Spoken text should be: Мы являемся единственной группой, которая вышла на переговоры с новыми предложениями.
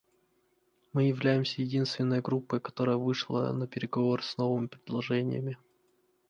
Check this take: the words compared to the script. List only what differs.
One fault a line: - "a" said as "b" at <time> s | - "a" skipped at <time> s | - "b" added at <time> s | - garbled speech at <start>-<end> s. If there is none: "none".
none